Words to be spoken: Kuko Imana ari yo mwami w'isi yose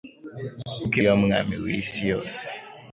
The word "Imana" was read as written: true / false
false